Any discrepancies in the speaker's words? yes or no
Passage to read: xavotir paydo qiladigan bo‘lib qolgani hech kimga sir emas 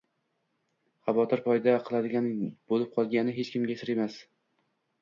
no